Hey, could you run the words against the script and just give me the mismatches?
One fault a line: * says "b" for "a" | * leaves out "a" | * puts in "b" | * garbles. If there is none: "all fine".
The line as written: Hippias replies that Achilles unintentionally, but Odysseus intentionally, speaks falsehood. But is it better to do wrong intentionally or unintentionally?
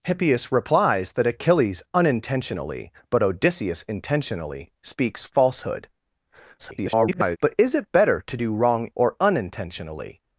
* garbles
* leaves out "intentionally"